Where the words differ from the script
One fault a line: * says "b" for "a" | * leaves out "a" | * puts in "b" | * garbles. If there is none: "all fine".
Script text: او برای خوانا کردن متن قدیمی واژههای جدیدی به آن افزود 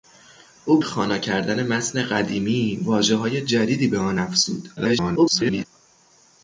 * leaves out "برای"
* garbles